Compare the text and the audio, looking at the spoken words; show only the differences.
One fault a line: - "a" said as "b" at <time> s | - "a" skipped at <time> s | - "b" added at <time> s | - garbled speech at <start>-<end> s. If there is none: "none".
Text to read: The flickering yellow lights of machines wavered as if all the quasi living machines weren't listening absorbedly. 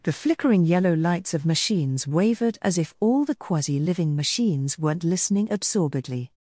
none